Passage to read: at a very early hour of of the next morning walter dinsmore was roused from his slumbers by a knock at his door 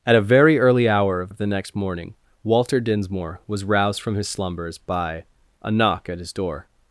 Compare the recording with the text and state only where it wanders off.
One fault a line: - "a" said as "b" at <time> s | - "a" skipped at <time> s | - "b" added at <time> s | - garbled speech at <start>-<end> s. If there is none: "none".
none